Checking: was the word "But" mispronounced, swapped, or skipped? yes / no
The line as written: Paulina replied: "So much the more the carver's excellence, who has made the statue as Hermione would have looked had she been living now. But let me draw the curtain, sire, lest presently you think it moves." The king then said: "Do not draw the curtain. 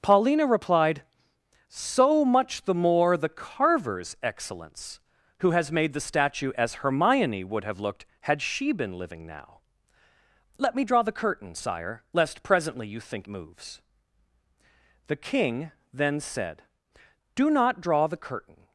yes